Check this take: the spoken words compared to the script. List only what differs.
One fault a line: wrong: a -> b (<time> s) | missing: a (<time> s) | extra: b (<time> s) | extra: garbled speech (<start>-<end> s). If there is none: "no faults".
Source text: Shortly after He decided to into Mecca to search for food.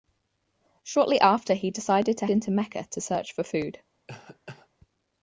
no faults